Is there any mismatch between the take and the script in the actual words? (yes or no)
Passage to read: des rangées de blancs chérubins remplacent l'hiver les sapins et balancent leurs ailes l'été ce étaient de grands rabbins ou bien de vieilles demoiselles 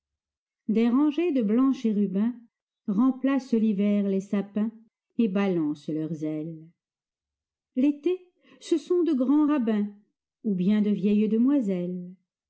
yes